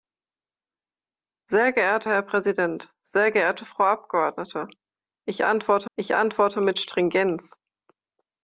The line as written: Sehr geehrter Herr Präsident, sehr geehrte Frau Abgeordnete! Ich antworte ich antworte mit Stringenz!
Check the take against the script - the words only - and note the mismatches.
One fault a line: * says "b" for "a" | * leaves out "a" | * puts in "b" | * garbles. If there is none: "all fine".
all fine